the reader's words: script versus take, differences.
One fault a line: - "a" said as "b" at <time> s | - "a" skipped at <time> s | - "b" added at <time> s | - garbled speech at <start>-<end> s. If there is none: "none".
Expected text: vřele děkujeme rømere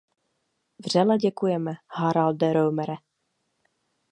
- "haralde" added at 1.9 s